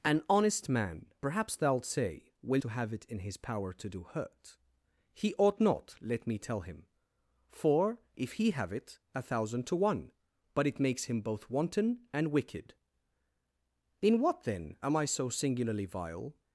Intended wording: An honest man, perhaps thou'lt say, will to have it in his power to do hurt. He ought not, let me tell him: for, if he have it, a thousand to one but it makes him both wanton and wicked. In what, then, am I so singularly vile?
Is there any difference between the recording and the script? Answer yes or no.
no